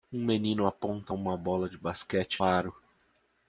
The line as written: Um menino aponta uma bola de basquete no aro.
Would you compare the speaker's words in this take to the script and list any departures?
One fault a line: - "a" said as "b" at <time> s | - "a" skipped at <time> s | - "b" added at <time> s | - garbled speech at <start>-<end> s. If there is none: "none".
- "no" skipped at 2.4 s